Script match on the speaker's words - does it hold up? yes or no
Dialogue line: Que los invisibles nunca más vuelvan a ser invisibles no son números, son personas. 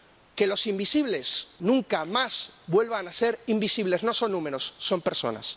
yes